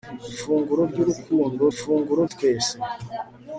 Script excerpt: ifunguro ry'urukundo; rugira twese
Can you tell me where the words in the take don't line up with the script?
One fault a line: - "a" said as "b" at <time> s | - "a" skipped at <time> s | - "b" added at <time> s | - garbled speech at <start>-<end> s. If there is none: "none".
- "rugira" said as "ifunguro" at 1.7 s